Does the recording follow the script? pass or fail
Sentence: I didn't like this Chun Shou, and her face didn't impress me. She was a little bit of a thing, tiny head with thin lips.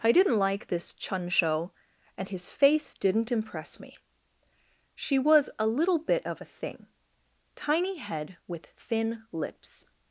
fail